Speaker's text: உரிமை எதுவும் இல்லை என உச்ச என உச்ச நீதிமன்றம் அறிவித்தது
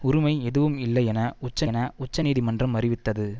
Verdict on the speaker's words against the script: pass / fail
pass